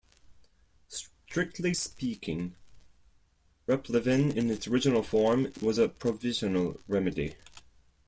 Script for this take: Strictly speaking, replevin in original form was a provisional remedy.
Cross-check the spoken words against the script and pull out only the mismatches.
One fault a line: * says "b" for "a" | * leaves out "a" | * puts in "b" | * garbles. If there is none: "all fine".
* puts in "its"